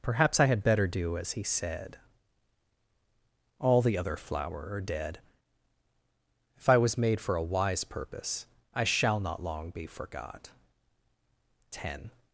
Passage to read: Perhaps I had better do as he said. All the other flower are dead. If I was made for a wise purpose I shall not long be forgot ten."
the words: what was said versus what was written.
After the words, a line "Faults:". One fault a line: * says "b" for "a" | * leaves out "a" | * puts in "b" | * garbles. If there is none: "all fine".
Perhaps I had better do as he said. All the other flower are dead. If I was made for a wise purpose I shall not long be forgot ten."
Faults:
all fine